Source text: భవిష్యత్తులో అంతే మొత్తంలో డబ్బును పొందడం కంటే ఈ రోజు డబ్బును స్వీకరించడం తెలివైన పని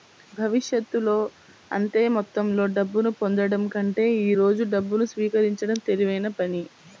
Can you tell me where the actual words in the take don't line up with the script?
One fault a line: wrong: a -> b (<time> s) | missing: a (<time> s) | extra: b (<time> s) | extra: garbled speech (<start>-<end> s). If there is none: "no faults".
no faults